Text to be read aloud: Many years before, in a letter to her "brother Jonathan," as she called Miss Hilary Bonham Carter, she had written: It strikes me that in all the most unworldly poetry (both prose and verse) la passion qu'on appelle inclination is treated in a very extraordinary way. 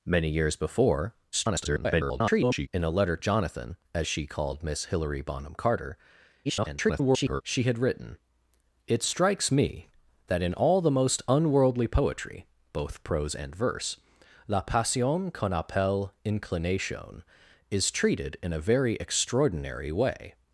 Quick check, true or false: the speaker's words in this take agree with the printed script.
false